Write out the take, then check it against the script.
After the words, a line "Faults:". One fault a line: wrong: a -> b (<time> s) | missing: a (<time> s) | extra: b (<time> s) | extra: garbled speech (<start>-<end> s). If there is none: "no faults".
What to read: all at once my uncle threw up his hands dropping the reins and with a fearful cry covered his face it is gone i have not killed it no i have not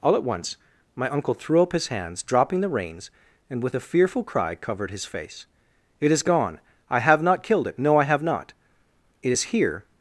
all at once my uncle threw up his hands dropping the reins and with a fearful cry covered his face it is gone i have not killed it no i have not it is here
Faults:
extra: it is here (9.2 s)